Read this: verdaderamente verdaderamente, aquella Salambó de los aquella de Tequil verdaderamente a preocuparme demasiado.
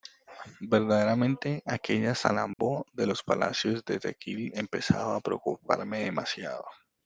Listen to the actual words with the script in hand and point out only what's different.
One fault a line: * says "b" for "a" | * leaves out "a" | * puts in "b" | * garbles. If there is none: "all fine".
* leaves out "verdaderamente"
* says "palacios" for "aquella"
* says "empezaba" for "verdaderamente"